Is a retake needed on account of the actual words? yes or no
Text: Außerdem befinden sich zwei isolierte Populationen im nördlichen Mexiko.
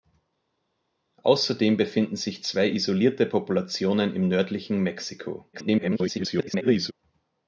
yes